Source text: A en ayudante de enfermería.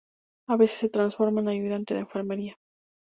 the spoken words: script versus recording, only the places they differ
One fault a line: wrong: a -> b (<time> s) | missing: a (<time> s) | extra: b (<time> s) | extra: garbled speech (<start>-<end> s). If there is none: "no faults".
extra: veces se transforma (0.6 s)